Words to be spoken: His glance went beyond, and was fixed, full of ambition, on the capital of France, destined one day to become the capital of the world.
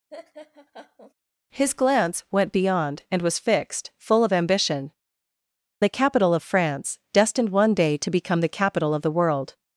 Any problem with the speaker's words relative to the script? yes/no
yes